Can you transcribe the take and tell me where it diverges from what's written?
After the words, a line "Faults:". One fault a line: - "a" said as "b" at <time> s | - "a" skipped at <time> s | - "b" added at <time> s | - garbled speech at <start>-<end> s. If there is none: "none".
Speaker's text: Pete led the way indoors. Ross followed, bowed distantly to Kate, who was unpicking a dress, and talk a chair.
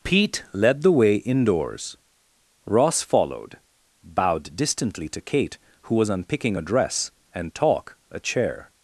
Pete led the way indoors. Ross followed, bowed distantly to Kate, who was unpicking a dress, and talk a chair.
Faults:
none